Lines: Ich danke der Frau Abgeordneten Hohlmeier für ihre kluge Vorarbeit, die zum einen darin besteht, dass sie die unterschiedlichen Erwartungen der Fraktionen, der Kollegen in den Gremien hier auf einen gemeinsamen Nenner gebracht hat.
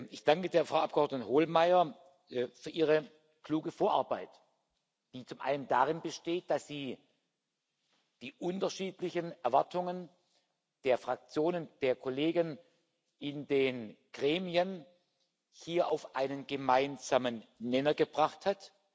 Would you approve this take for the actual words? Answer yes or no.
yes